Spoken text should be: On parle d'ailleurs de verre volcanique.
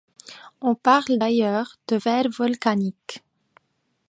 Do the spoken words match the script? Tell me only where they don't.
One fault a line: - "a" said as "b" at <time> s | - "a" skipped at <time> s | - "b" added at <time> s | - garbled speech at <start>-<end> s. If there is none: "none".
none